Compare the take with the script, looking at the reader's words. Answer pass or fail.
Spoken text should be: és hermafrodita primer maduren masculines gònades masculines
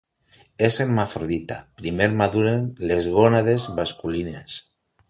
fail